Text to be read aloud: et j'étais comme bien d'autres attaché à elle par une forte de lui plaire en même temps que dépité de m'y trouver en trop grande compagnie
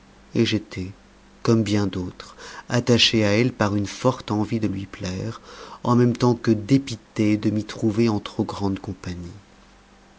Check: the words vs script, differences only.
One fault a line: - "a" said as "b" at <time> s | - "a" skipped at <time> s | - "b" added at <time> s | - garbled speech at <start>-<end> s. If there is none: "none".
- "envie" added at 4.3 s